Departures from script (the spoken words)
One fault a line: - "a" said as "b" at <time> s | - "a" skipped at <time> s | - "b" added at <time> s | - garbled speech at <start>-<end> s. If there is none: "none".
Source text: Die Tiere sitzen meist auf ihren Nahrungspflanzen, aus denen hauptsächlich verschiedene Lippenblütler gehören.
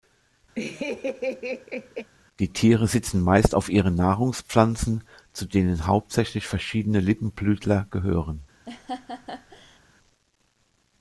- "aus" said as "zu" at 5.3 s